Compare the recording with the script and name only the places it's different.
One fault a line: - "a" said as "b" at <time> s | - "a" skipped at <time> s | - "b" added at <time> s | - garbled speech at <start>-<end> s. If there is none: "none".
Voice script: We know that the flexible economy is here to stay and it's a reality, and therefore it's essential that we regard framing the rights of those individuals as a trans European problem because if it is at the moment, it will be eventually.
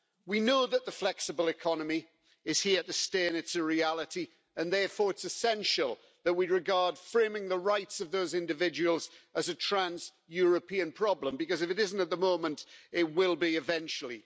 - "is" said as "isn't" at 11.8 s